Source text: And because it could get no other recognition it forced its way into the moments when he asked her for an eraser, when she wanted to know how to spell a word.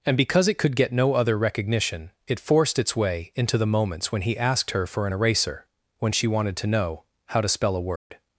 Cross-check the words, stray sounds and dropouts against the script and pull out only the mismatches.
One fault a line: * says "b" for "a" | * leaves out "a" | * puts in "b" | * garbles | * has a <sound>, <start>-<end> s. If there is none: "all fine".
* has a dropout, 8.0-8.1 s